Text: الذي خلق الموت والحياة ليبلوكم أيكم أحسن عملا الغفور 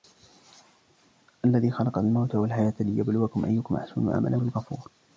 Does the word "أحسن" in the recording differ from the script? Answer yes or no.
no